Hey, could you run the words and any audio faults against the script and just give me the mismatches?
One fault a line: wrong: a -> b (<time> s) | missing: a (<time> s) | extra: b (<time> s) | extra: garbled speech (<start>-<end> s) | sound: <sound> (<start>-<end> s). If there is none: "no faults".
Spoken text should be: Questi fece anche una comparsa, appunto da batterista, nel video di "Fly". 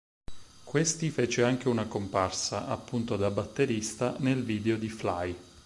no faults